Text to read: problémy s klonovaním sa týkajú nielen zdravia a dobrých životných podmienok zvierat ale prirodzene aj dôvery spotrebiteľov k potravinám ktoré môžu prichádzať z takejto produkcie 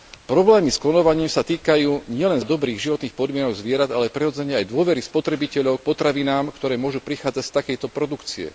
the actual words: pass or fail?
fail